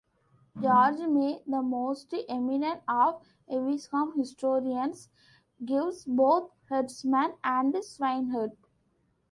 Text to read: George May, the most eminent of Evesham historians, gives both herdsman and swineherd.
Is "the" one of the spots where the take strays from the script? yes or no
no